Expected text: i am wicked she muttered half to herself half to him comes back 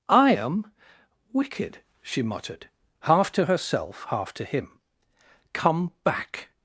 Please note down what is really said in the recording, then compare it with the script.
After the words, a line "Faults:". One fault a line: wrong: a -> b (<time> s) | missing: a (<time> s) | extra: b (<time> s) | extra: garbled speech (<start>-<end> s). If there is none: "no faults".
i am wicked she muttered half to herself half to him come back
Faults:
wrong: comes -> come (5.5 s)